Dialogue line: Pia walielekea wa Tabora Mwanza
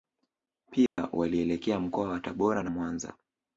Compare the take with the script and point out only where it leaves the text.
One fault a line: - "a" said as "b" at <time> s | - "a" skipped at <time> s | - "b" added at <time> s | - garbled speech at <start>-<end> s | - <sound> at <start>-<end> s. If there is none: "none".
- dropout at 0.9-1.0 s
- "mkoa" added at 1.8 s
- "na" added at 2.6 s